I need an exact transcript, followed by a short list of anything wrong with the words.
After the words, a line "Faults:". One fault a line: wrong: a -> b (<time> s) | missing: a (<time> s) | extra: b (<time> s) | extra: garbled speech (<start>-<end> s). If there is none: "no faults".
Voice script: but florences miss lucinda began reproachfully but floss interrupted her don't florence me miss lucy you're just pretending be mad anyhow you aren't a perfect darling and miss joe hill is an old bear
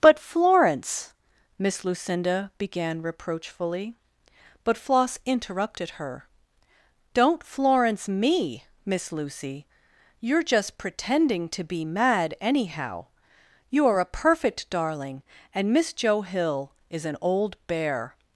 but florence miss lucinda began reproachfully but floss interrupted her don't florence me miss lucy you're just pretending to be mad anyhow you are a perfect darling and miss joe hill is an old bear
Faults:
wrong: florences -> florence (0.2 s)
extra: to (11.5 s)
wrong: aren't -> are (13.8 s)